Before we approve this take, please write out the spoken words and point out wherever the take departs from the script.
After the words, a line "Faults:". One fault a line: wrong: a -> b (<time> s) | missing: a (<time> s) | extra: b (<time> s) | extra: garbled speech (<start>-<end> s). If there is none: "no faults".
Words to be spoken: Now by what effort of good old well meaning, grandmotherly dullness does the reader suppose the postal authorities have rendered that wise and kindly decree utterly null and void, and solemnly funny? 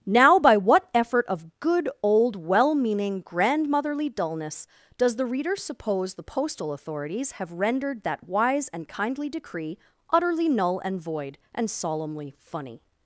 Now by what effort of good old well meaning, grandmotherly dullness does the reader suppose the postal authorities have rendered that wise and kindly decree utterly null and void, and solemnly funny?
Faults:
no faults